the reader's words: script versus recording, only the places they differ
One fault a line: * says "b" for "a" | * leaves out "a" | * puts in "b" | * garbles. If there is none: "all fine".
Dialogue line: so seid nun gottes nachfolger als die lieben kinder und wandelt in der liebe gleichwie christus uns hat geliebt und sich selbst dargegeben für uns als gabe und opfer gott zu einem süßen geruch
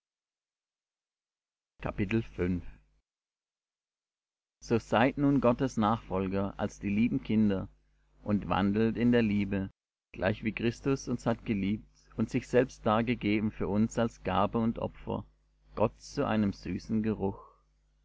all fine